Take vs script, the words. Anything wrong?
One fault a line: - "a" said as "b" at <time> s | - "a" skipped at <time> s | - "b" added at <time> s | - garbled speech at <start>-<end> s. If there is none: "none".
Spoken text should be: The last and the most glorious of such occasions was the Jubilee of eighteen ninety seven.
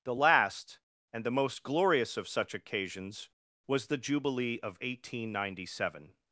none